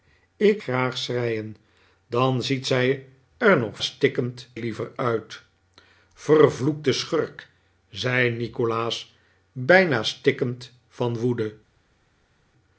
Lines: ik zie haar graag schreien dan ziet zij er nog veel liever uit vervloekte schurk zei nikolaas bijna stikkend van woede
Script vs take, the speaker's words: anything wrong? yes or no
yes